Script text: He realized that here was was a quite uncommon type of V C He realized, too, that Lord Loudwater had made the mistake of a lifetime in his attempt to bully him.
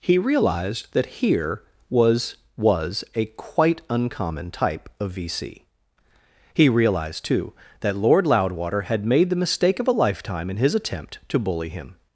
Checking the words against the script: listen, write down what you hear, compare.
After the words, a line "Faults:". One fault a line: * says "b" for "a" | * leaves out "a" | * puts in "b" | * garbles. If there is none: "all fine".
He realized that here was was a quite uncommon type of V C He realized, too, that Lord Loudwater had made the mistake of a lifetime in his attempt to bully him.
Faults:
all fine